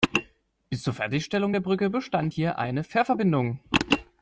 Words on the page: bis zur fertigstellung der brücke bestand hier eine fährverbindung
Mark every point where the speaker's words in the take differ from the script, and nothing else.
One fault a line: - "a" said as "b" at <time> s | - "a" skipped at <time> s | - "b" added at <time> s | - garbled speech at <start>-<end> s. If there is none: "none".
none